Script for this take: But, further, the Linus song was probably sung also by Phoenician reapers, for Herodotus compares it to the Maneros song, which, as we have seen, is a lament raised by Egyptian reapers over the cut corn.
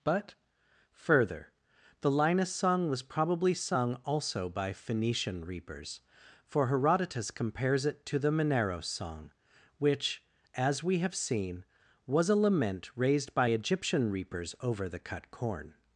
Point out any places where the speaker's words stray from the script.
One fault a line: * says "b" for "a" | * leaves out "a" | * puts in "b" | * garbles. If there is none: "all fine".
* says "was" for "is"